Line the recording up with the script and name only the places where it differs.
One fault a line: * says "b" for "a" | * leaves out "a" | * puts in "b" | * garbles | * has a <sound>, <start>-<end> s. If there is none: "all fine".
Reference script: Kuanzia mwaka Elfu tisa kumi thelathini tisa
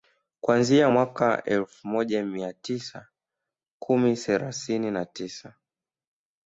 * puts in "moja mia"
* puts in "na"